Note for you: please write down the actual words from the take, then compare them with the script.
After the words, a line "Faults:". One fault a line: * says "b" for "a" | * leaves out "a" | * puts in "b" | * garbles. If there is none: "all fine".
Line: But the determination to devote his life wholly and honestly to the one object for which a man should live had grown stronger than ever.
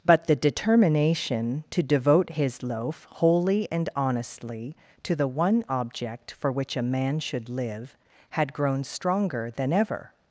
But the determination to devote his loaf wholly and honestly to the one object for which a man should live had grown stronger than ever.
Faults:
* says "loaf" for "life"